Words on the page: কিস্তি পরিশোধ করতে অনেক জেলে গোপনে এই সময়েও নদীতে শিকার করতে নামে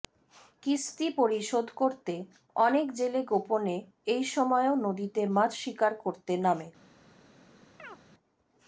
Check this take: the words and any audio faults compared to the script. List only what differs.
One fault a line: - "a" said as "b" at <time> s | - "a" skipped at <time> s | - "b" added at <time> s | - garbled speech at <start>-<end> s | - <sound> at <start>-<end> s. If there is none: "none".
- "মাছ" added at 5.3 s
- chirp at 7.8-8.0 s